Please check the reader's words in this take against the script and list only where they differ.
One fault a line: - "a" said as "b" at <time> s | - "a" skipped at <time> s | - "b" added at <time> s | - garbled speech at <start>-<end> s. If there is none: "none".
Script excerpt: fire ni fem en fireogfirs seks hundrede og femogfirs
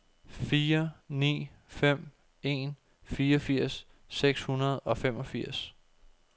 none